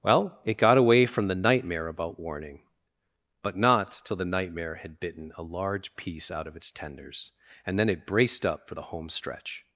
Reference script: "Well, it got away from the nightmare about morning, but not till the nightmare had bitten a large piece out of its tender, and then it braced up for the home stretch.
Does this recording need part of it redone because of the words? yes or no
yes